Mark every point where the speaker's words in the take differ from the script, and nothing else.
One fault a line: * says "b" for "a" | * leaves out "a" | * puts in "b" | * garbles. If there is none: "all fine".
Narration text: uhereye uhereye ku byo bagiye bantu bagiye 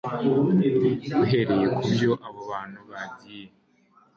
* leaves out "uhereye"
* says "abo" for "bagiye"